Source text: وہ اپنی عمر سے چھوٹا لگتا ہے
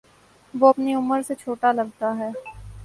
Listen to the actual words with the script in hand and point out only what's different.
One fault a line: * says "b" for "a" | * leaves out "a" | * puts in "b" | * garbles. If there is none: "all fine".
all fine